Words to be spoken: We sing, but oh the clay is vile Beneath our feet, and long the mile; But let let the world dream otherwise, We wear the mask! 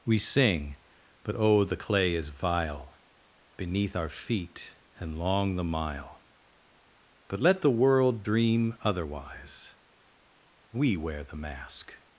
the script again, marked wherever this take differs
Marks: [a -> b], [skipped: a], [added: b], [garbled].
We sing, but oh the clay is vile Beneath our feet, and long the mile; But let [skipped: let] the world dream otherwise, We wear the mask!